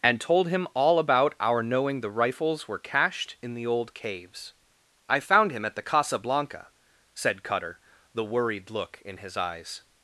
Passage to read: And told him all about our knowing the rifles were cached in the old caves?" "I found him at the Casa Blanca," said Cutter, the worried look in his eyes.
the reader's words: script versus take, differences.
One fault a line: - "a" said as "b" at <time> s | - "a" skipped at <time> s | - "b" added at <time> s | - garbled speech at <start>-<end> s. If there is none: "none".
none